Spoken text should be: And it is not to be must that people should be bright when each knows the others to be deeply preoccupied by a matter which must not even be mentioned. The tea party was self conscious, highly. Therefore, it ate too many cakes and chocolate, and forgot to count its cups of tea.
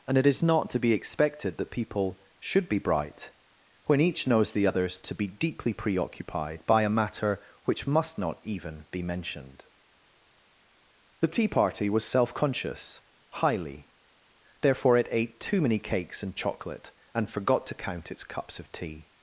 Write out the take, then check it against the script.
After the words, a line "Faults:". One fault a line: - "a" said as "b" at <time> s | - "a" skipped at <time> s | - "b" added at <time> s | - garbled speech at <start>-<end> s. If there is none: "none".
And it is not to be expected that people should be bright when each knows the others to be deeply preoccupied by a matter which must not even be mentioned. The tea party was self conscious, highly. Therefore, it ate too many cakes and chocolate, and forgot to count its cups of tea.
Faults:
- "must" said as "expected" at 0.9 s